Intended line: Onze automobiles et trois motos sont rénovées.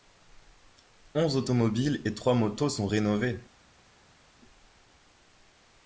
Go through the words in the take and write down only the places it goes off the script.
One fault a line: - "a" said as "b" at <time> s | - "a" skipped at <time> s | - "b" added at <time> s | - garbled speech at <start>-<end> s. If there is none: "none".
none